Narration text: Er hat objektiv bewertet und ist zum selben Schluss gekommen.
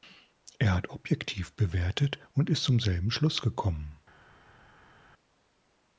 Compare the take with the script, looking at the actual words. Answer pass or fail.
pass